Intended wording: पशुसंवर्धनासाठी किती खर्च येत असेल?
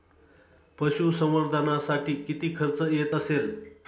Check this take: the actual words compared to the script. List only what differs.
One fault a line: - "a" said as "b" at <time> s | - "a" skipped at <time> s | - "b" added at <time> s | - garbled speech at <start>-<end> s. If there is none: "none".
none